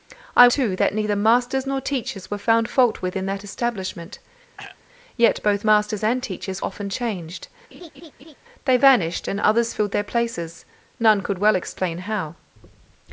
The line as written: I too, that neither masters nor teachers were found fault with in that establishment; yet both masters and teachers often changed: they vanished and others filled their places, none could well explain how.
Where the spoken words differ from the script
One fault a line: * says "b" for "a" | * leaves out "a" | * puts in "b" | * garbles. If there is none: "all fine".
all fine